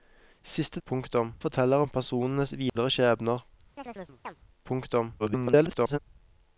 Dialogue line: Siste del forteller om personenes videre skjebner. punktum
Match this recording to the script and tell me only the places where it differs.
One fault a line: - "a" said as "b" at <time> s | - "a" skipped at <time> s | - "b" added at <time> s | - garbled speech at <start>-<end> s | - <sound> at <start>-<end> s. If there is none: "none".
- "del" said as "punktum" at 0.9 s
- dropout at 2.7-2.8 s
- chirp at 3.8-4.4 s
- garbled speech at 5.2-6.0 s